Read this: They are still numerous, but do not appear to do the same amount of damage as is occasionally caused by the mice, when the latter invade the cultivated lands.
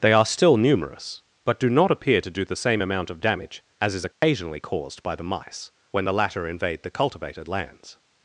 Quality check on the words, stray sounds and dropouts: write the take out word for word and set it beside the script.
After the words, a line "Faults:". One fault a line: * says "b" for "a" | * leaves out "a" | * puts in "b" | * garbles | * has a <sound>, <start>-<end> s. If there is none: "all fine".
They are still numerous, but do not appear to do the same amount of damage as is occasionally caused by the mice, when the latter invade the cultivated lands.
Faults:
* has a dropout, 4.1-4.2 s